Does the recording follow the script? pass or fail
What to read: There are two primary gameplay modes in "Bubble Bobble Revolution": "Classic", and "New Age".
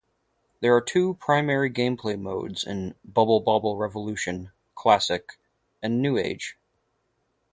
pass